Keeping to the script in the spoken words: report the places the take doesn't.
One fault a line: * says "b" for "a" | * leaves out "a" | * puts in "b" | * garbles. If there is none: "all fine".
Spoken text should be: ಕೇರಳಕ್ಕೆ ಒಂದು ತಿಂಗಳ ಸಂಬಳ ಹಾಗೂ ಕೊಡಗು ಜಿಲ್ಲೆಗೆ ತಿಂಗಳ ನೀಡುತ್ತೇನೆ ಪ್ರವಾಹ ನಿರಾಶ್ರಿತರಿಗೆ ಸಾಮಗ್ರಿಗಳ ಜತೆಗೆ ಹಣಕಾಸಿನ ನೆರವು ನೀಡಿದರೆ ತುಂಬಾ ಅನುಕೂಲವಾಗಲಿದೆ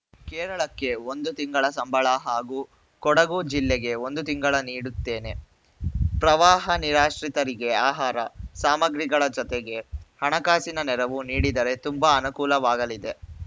* puts in "ಒಂದು"
* puts in "ಆಹಾರ"